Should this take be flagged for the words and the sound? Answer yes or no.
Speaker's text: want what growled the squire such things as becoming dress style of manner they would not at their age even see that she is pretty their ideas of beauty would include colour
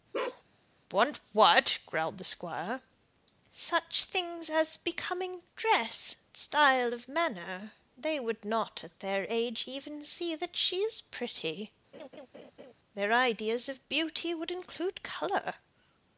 yes